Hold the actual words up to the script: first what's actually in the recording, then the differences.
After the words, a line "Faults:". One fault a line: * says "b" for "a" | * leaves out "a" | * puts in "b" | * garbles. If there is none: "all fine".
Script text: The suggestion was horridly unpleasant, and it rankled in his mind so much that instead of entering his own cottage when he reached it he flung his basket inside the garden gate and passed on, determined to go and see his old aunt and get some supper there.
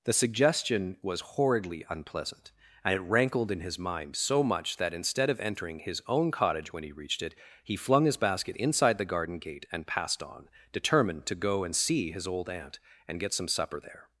The suggestion was horridly unpleasant, and it rankled in his mind so much that instead of entering his own cottage when he reached it he flung his basket inside the garden gate and passed on, determined to go and see his old aunt and get some supper there.
Faults:
all fine